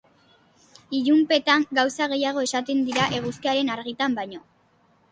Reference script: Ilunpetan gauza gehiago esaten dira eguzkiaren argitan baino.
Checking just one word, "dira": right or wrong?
right